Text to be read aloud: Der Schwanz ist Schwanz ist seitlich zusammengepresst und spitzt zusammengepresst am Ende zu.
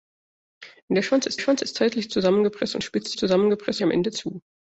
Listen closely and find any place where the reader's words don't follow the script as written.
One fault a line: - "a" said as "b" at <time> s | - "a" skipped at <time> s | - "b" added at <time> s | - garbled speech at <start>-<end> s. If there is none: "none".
none